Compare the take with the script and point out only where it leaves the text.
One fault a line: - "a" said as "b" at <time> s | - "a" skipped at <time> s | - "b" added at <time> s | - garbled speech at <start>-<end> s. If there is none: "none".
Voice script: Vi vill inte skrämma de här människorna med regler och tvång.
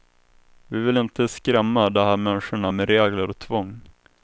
none